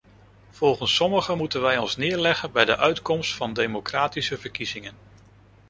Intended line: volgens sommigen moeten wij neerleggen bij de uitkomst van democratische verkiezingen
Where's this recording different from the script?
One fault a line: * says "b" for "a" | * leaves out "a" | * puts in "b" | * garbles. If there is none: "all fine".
* puts in "ons"